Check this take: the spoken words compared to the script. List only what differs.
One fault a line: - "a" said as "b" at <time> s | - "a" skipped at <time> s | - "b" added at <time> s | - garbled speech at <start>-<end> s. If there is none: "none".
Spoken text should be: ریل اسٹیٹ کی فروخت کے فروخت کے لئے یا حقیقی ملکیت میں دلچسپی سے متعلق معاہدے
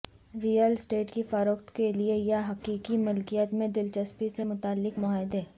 - "فروخت کے" skipped at 1.9 s